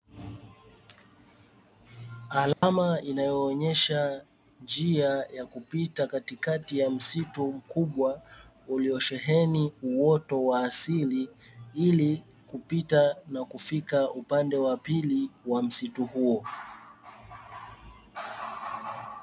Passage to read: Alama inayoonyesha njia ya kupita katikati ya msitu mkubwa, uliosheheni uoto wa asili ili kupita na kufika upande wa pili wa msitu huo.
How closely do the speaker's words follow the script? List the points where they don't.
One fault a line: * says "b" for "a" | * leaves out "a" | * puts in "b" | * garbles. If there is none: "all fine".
all fine